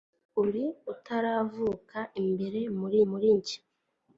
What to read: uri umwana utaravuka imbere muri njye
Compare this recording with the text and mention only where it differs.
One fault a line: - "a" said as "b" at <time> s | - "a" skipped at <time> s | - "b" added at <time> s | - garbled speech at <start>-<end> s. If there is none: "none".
- "umwana" skipped at 0.6 s
- "muri" added at 3.1 s